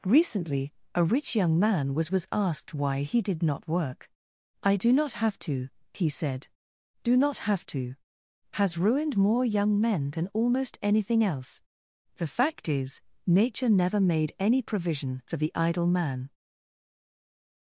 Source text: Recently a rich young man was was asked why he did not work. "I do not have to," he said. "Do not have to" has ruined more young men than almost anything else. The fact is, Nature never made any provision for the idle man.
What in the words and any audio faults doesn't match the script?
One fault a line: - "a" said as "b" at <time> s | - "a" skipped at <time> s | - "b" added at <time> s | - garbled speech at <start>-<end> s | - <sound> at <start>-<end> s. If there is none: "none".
none